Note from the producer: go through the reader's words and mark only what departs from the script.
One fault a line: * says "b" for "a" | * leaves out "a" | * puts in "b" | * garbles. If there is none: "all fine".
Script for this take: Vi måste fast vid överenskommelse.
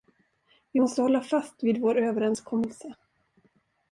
* puts in "hålla"
* puts in "vår"